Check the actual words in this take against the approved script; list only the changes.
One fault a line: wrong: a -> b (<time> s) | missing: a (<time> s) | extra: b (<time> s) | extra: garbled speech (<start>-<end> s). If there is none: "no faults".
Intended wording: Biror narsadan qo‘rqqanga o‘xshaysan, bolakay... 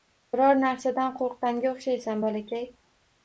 no faults